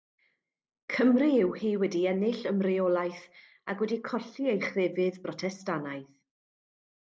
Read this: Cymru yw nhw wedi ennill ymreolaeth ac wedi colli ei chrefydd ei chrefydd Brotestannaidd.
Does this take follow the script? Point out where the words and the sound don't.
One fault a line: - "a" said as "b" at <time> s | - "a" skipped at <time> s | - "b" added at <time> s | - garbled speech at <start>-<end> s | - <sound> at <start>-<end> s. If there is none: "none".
- "nhw" said as "hi" at 1.6 s
- "ei chrefydd" skipped at 5.2 s